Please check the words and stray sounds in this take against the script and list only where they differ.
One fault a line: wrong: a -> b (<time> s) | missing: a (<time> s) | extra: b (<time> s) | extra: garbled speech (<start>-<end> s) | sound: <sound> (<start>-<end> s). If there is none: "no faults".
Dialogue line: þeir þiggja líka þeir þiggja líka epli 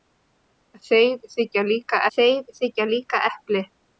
no faults